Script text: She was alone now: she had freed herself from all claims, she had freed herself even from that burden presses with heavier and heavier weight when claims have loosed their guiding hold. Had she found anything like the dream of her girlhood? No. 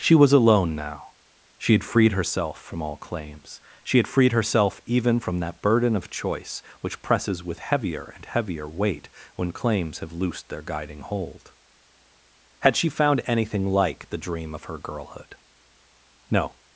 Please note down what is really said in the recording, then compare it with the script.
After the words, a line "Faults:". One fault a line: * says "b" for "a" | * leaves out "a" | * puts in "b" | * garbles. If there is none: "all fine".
She was alone now: she had freed herself from all claims, she had freed herself even from that burden of choice which presses with heavier and heavier weight when claims have loosed their guiding hold. Had she found anything like the dream of her girlhood? No.
Faults:
* puts in "of choice which"